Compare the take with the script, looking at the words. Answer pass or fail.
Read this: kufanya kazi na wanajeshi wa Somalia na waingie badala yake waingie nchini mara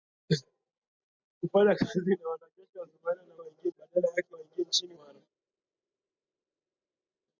pass